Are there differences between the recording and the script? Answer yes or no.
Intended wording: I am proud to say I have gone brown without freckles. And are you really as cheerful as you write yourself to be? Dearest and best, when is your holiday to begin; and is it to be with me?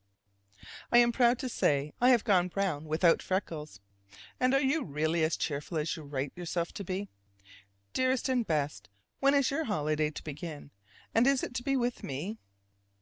no